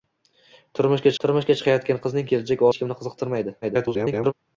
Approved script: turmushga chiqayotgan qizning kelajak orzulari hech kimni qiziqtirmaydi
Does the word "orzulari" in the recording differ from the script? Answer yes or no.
yes